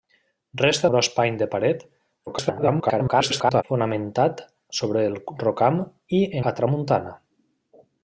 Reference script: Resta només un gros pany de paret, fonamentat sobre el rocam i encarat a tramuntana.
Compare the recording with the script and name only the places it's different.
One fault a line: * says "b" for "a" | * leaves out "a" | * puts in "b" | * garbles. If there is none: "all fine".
* leaves out "només un"
* garbles
* leaves out "encarat"